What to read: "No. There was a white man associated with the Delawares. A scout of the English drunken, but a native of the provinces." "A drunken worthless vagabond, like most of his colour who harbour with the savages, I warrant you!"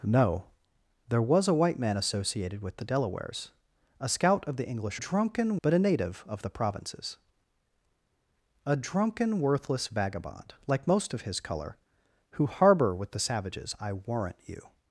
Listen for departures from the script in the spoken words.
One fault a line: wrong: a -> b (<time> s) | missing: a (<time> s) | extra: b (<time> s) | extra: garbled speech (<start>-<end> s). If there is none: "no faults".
no faults